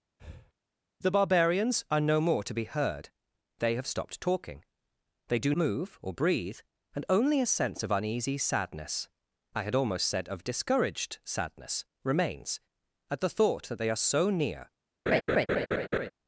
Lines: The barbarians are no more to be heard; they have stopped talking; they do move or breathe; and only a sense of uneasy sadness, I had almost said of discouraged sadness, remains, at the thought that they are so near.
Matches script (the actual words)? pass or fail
pass